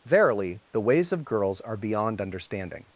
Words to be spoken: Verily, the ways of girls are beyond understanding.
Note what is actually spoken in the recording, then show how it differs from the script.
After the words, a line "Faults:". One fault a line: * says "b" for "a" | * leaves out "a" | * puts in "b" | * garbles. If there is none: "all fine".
Verily, the ways of girls are beyond understanding.
Faults:
all fine